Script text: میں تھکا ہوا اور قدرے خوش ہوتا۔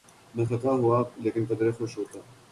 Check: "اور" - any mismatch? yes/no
yes